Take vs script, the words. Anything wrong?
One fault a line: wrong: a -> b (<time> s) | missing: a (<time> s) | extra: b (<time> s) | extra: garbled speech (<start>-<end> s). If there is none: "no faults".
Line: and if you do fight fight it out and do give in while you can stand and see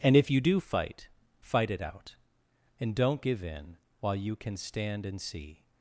wrong: do -> don't (3.0 s)